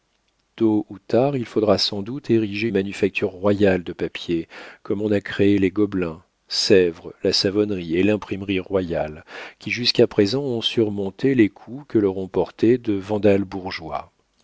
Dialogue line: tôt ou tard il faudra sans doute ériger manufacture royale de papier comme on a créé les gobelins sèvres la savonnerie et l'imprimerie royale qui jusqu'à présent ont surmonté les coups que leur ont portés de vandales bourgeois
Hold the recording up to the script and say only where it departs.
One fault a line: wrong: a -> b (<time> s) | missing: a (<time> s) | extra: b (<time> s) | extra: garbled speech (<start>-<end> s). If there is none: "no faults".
no faults